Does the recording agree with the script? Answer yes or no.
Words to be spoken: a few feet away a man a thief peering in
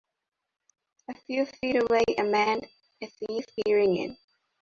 yes